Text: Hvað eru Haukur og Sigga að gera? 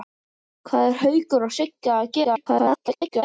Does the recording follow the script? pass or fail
fail